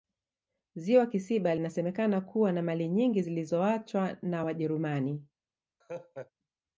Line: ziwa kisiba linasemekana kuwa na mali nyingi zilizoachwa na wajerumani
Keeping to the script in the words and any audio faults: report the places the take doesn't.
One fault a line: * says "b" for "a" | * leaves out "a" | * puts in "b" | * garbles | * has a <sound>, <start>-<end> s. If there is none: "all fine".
* has a laugh, 5.8-6.3 s